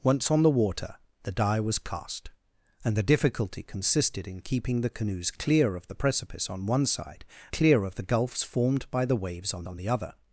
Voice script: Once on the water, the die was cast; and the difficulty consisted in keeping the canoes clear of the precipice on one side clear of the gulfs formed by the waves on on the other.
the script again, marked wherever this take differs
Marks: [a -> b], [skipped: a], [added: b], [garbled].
Once on the water, the die was cast; and the difficulty consisted in keeping the canoes clear of the precipice on one side clear of the gulfs formed by the waves on on the other.